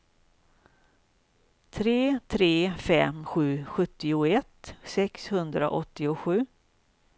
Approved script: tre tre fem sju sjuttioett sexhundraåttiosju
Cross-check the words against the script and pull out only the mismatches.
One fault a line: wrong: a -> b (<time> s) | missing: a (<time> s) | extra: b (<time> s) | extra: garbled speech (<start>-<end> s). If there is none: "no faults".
no faults